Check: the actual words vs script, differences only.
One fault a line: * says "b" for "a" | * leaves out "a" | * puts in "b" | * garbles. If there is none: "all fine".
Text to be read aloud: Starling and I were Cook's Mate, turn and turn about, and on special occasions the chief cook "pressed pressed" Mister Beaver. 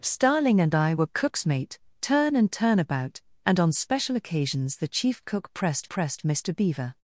all fine